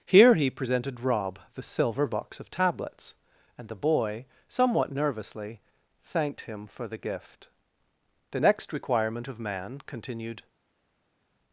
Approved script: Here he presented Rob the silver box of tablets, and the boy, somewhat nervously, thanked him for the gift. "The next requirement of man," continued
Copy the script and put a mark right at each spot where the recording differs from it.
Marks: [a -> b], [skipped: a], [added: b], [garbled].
Here he presented Rob the silver box of tablets, and the boy, somewhat nervously, thanked him for the gift. "The next requirement of man," continued